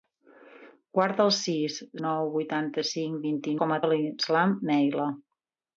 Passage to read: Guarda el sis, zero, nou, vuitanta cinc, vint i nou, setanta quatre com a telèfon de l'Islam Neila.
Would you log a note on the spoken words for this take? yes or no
yes